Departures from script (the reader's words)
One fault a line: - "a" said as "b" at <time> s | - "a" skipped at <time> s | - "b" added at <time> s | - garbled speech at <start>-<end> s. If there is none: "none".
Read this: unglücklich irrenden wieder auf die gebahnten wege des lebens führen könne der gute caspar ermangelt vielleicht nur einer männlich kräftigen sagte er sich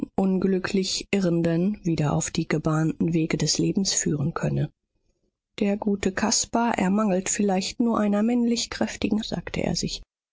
none